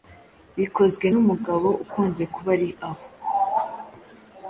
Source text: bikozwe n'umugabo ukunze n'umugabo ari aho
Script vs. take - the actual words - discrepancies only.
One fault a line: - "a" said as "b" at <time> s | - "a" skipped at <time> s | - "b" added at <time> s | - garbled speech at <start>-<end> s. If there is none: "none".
- "n'umugabo" said as "kuba" at 2.3 s